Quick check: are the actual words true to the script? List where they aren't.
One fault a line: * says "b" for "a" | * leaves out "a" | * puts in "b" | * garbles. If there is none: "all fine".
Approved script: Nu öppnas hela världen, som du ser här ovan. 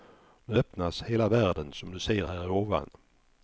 all fine